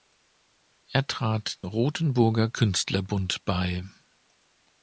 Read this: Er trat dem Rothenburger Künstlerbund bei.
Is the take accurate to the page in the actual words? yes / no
no